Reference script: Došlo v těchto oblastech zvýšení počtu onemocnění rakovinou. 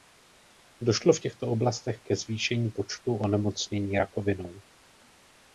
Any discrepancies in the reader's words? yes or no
yes